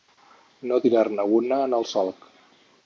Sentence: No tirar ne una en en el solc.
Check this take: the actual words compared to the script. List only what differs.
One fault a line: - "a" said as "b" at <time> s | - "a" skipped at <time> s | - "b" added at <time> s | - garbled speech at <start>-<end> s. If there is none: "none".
- "en" skipped at 1.8 s